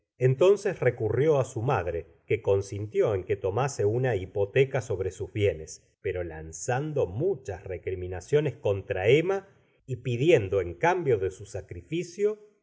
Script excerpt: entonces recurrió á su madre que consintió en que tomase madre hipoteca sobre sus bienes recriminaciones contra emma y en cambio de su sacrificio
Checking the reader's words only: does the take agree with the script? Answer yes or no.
no